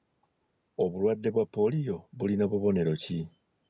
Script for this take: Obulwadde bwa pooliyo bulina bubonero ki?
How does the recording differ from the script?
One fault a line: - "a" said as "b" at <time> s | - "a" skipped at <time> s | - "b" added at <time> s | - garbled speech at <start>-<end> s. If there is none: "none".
none